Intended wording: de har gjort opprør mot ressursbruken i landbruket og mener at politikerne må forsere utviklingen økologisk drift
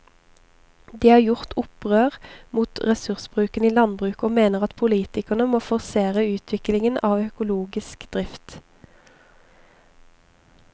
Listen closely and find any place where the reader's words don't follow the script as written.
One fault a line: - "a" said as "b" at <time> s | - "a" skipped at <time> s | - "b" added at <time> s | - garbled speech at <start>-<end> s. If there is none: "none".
- "av" added at 7.1 s